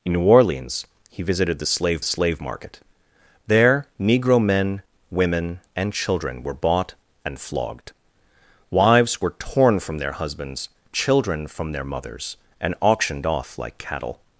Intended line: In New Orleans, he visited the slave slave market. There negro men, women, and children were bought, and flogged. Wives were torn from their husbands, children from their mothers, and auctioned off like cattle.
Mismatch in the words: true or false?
false